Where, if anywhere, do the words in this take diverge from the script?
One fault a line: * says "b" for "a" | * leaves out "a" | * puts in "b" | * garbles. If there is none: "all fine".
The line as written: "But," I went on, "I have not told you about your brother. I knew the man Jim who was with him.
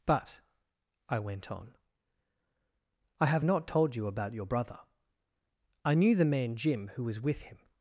all fine